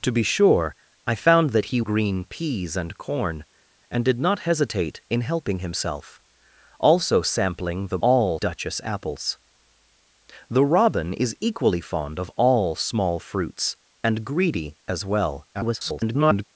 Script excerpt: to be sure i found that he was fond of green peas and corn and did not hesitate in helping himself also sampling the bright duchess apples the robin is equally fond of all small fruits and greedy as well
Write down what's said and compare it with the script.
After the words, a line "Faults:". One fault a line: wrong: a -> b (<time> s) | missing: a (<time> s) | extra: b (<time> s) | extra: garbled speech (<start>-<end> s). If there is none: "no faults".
to be sure i found that he green peas and corn and did not hesitate in helping himself also sampling the all duchess apples the robin is equally fond of all small fruits and greedy as well [garbled]
Faults:
missing: was fond of (1.8 s)
wrong: bright -> all (8.0 s)
extra: garbled speech (15.5-16.4 s)